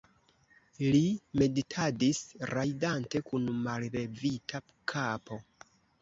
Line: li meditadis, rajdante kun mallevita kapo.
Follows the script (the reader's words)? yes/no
yes